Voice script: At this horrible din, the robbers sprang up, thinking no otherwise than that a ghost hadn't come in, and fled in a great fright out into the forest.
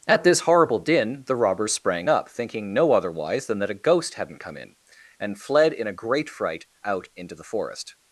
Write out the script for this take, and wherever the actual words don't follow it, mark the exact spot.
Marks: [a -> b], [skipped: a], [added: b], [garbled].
At this horrible din, the robbers sprang up, thinking no otherwise than that a ghost hadn't come in, and fled in a great fright out into the forest.